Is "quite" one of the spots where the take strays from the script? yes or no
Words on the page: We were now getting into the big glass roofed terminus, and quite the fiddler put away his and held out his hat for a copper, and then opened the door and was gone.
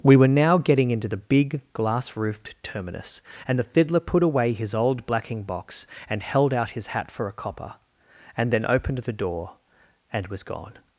yes